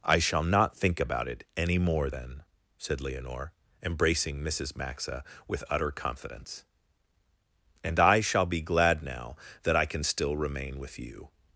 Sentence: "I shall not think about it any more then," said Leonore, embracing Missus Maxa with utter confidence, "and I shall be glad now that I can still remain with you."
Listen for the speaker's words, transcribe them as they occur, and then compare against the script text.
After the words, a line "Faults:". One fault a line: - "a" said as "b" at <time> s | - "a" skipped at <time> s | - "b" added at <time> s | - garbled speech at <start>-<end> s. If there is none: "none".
"I shall not think about it any more then," said Leonore, embracing Missus Maxa with utter confidence, "and I shall be glad now that I can still remain with you."
Faults:
none